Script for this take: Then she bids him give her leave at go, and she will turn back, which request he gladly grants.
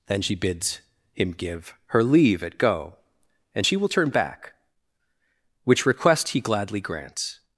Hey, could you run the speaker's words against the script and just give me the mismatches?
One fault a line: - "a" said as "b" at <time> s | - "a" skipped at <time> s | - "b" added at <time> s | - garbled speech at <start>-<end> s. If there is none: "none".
none